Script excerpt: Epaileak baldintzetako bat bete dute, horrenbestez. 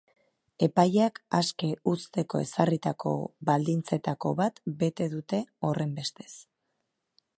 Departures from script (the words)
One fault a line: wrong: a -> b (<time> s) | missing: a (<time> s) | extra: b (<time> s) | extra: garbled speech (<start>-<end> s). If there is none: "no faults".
extra: aske uzteko ezarritako (1.4 s)